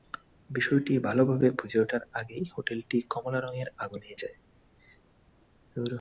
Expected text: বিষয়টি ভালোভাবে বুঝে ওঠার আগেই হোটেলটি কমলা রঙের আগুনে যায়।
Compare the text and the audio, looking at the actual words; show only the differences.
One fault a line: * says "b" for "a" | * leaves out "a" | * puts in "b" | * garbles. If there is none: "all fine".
all fine